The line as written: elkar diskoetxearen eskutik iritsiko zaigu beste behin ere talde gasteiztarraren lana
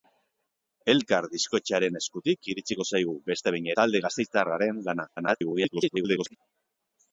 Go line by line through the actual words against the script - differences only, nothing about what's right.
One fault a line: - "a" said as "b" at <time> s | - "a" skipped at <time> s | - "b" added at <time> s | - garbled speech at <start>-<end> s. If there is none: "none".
- "ere" skipped at 3.7 s
- garbled speech at 5.2-6.4 s